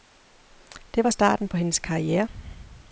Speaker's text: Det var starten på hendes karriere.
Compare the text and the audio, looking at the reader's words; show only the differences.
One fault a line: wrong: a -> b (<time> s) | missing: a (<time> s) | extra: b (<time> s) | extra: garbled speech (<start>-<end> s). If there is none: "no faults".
no faults